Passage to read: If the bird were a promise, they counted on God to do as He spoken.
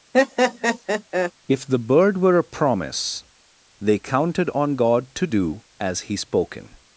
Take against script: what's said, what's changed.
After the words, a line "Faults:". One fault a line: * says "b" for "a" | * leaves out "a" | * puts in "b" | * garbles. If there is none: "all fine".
If the bird were a promise, they counted on God to do as He spoken.
Faults:
all fine